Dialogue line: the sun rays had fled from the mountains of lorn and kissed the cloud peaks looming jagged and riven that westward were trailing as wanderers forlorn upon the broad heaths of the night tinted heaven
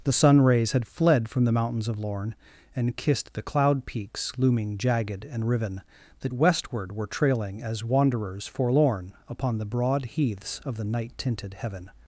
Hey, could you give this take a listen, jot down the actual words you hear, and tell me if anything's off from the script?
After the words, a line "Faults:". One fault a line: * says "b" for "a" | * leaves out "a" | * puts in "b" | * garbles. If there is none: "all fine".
the sun rays had fled from the mountains of lorn and kissed the cloud peaks looming jagged and riven that westward were trailing as wanderers forlorn upon the broad heaths of the night tinted heaven
Faults:
all fine